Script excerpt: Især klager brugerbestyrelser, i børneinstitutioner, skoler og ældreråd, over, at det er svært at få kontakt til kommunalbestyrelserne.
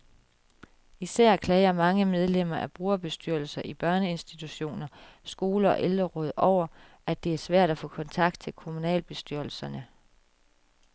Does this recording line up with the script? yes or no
no